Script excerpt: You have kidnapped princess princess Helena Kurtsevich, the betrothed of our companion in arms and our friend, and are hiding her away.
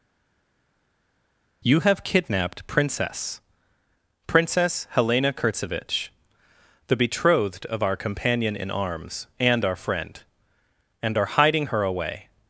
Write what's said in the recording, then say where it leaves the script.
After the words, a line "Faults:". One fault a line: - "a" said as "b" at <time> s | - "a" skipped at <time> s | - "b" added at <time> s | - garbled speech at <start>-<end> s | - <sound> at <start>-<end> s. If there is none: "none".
You have kidnapped princess princess Helena Kurtsevich, the betrothed of our companion in arms and our friend, and are hiding her away.
Faults:
none